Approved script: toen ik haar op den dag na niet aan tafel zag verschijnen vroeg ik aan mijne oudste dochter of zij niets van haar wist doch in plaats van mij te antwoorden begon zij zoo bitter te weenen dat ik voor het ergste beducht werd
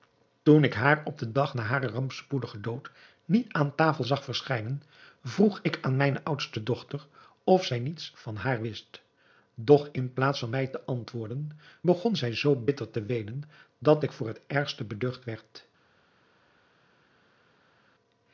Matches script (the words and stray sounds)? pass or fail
fail